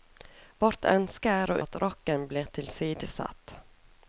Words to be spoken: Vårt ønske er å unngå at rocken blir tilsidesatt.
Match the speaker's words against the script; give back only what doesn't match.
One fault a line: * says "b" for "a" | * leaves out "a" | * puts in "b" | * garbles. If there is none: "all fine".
* leaves out "unngå"